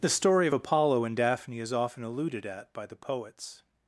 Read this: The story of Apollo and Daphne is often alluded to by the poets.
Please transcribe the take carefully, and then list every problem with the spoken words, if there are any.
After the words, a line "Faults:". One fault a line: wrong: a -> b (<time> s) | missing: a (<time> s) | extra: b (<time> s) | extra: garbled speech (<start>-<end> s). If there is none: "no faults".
The story of Apollo and Daphne is often alluded at by the poets.
Faults:
wrong: to -> at (2.4 s)